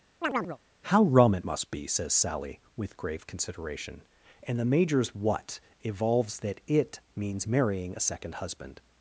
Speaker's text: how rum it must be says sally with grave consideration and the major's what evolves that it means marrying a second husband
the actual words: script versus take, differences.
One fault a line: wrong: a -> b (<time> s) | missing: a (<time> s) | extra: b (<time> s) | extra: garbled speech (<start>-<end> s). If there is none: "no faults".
no faults